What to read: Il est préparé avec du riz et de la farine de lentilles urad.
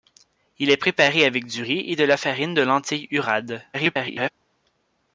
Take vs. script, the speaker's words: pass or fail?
fail